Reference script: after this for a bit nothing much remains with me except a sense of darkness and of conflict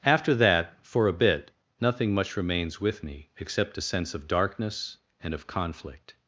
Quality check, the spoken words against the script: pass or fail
fail